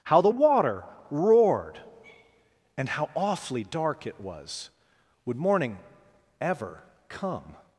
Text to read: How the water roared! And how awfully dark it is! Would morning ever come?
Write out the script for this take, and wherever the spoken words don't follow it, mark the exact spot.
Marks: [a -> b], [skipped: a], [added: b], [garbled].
How the water roared! And how awfully dark it [is! -> was] Would morning ever come?